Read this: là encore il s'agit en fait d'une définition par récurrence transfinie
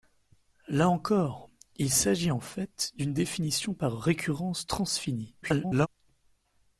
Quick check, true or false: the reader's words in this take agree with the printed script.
false